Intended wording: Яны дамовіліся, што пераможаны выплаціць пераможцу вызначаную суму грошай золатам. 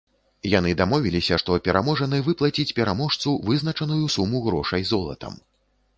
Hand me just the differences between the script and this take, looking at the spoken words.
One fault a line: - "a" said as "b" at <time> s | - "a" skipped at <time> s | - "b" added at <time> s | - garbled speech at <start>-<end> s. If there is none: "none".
none